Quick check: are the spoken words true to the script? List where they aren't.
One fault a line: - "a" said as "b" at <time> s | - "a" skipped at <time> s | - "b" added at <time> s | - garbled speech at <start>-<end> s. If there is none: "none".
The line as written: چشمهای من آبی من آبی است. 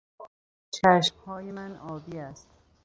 - "من آبی" skipped at 2.2 s